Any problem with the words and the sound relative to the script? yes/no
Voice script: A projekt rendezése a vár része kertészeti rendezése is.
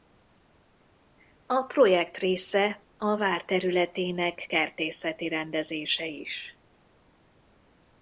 yes